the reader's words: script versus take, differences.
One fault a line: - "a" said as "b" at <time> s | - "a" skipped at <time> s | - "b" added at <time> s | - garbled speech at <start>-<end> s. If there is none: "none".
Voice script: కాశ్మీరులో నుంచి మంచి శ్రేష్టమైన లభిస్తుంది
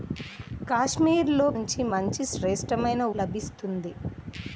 none